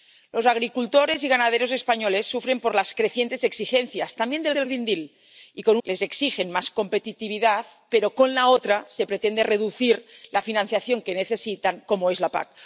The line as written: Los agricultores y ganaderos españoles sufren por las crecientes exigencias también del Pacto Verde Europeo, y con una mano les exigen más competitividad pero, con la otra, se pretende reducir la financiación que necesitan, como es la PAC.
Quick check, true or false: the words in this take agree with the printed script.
false